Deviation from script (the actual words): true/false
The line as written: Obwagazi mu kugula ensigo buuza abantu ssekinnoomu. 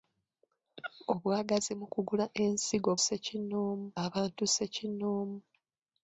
true